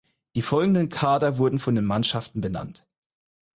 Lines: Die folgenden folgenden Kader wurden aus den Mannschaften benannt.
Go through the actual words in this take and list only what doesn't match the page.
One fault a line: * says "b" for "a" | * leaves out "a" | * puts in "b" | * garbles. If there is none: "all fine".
* leaves out "folgenden"
* says "von" for "aus"